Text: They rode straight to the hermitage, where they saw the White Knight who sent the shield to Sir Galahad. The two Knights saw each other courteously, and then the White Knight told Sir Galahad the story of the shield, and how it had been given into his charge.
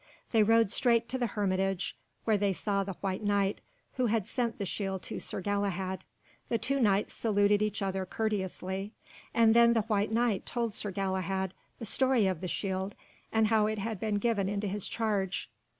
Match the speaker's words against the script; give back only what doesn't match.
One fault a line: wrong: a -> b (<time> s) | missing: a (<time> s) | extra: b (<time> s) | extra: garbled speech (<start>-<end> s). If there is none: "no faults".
extra: had (4.1 s)
wrong: saw -> saluted (7.1 s)